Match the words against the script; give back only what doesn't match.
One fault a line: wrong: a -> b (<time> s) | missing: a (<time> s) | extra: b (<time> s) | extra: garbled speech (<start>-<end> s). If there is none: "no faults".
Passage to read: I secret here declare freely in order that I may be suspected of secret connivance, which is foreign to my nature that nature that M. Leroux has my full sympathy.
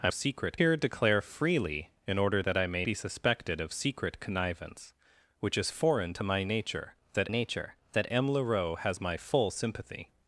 no faults